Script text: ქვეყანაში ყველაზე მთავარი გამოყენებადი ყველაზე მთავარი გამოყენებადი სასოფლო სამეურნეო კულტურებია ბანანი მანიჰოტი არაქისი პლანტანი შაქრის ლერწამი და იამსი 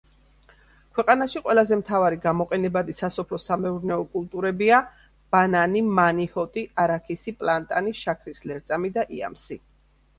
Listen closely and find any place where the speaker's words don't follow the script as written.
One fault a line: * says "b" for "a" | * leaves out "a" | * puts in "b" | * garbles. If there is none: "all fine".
* leaves out "ყველაზე მთავარი გამოყენებადი"